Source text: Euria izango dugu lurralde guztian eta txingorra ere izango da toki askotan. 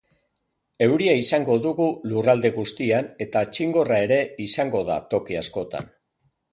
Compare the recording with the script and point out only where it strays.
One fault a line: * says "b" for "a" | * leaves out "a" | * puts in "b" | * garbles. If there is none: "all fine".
all fine